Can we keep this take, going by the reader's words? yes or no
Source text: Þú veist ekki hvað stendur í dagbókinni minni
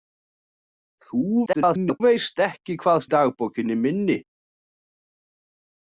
no